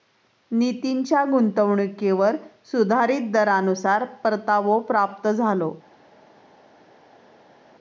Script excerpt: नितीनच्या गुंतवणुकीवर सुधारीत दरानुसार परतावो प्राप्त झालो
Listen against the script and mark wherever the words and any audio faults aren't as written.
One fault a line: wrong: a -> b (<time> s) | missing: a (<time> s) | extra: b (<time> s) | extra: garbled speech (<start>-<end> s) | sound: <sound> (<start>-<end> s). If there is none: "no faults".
no faults